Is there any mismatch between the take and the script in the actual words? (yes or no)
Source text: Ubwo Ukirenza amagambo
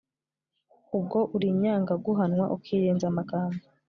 yes